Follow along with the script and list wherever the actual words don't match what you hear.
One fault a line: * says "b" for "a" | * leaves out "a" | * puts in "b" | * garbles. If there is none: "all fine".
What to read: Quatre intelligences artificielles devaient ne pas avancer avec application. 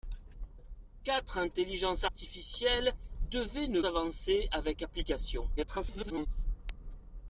* leaves out "pas"
* garbles